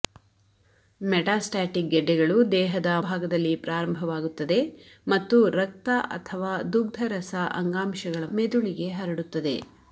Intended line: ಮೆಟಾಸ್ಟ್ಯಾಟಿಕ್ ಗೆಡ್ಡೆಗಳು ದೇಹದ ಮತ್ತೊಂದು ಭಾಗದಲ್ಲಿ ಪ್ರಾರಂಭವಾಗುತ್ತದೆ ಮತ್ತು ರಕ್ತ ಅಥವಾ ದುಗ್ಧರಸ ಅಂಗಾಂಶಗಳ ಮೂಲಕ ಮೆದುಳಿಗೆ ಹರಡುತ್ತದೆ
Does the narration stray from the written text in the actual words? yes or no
yes